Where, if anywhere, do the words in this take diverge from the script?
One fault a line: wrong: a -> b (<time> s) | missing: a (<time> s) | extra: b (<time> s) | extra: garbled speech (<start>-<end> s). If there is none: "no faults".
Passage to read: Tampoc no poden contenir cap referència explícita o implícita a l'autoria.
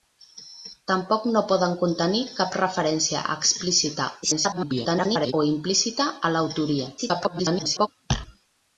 extra: garbled speech (4.2-5.3 s)
extra: garbled speech (7.0-7.9 s)